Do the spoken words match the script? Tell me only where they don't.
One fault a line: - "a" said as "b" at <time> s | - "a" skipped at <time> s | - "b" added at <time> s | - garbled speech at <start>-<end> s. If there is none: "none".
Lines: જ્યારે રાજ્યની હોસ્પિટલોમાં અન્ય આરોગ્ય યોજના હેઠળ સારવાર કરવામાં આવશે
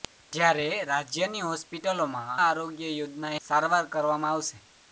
- "અન્ય" skipped at 2.3 s
- "હેઠળ" skipped at 3.4 s